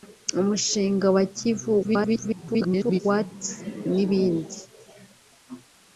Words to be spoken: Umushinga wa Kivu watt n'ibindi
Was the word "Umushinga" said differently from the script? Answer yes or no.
no